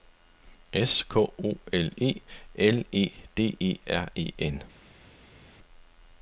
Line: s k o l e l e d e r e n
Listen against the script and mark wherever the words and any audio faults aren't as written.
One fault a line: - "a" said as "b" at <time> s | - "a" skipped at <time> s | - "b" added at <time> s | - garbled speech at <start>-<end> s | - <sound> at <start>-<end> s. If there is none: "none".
none